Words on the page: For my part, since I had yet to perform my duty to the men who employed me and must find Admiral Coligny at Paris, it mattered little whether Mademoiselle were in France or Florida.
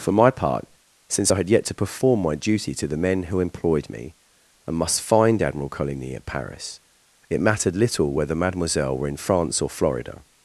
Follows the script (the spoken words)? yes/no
yes